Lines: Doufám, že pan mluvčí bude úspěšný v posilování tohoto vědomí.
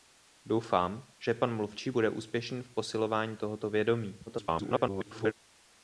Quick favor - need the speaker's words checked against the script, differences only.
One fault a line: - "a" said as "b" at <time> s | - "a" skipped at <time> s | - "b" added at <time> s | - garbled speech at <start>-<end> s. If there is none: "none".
- garbled speech at 4.3-5.3 s